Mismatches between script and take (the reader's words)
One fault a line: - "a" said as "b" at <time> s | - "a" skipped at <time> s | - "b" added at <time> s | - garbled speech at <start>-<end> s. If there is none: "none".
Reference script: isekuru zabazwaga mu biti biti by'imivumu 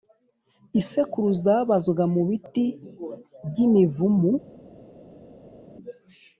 - "biti" skipped at 2.6 s